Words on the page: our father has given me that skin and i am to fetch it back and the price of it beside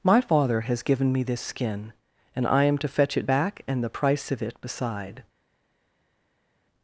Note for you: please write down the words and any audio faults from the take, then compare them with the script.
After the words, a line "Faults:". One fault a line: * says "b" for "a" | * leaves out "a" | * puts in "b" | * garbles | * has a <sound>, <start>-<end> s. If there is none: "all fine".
my father has given me this skin and i am to fetch it back and the price of it beside
Faults:
* says "my" for "our"
* says "this" for "that"